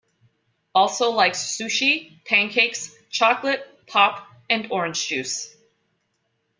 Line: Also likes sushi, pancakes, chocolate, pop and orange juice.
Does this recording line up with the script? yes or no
yes